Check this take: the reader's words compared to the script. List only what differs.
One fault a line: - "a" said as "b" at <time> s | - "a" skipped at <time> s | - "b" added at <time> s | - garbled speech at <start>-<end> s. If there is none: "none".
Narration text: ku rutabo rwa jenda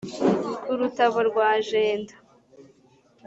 none